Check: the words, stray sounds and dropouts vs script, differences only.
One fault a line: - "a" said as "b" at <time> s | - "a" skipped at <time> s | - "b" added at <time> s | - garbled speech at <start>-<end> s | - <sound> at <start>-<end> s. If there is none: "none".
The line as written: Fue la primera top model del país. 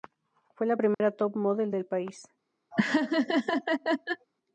- dropout at 0.9-1.0 s
- laugh at 2.7-4.3 s